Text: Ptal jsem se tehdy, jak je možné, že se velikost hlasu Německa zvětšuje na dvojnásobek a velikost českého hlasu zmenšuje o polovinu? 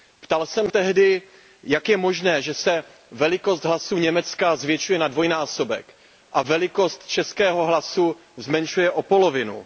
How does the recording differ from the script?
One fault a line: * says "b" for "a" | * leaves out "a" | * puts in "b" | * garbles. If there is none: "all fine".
* leaves out "se"